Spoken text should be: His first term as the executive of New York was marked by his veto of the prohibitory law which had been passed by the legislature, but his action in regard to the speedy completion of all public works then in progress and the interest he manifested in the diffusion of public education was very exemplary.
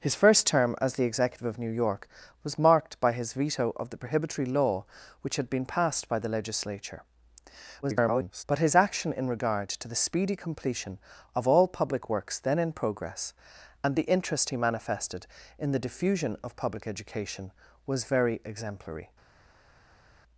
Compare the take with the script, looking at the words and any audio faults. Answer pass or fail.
fail